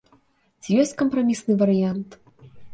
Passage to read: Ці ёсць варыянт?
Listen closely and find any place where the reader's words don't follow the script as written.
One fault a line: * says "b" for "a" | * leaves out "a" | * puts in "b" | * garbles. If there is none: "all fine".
* puts in "кампрамісны"